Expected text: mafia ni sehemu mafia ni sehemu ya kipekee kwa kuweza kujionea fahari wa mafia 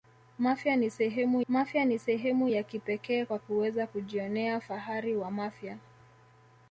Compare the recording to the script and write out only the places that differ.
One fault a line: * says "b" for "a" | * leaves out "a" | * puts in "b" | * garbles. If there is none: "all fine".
all fine